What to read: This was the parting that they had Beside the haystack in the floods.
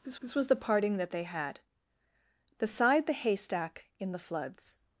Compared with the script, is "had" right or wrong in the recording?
right